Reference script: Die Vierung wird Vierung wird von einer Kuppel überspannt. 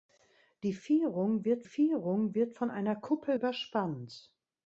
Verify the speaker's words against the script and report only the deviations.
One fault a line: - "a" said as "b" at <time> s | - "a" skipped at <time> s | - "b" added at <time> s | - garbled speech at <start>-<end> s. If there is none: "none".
none